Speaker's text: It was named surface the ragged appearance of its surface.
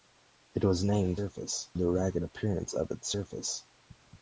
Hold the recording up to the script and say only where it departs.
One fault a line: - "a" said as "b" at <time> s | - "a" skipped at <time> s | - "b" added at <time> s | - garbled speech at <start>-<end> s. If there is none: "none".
none